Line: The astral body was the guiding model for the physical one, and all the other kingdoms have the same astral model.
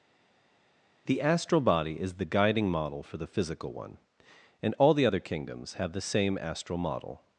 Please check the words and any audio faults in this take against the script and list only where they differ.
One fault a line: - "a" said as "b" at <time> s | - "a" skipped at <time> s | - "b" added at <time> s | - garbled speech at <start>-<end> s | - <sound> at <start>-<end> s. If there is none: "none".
- "was" said as "is" at 2.0 s